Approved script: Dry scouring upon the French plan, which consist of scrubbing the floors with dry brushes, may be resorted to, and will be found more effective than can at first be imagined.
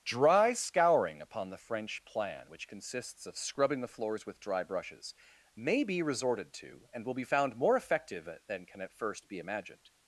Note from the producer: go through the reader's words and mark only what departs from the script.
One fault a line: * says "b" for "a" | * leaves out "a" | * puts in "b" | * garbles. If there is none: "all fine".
* says "consists" for "consist"